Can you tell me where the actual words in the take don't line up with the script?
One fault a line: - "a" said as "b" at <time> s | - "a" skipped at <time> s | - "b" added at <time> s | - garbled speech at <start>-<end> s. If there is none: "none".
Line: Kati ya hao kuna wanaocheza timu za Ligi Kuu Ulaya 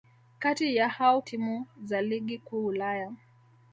- "kuna wanaocheza" skipped at 1.2 s